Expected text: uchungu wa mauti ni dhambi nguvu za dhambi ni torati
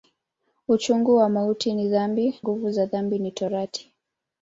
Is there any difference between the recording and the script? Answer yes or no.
no